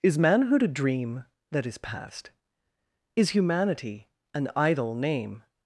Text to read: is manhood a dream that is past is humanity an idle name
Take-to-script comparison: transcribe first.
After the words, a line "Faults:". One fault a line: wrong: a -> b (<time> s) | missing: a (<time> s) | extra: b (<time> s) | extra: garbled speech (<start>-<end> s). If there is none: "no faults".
is manhood a dream that is past is humanity an idle name
Faults:
no faults